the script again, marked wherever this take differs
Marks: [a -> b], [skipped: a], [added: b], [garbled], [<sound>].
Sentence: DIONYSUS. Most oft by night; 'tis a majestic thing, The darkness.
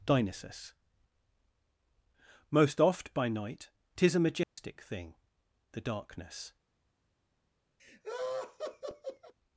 DIONYSUS. Most oft by night; 'tis a majestic [dropout] thing, The darkness. [laugh]